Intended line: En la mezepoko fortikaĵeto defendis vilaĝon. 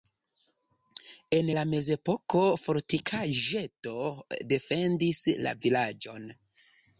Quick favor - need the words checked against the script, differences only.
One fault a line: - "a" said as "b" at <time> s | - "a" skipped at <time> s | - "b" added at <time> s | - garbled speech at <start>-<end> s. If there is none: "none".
- "la" added at 5.5 s